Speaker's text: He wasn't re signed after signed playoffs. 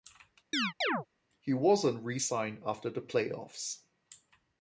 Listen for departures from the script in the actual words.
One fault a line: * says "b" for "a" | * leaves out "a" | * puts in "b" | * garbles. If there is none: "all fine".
* says "the" for "signed"